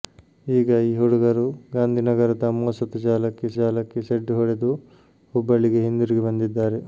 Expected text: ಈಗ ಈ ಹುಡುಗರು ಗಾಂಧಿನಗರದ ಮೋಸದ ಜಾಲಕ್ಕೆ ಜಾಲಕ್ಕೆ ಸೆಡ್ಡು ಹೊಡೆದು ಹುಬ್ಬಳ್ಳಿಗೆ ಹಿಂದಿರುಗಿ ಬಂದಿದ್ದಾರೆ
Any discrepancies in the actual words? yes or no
no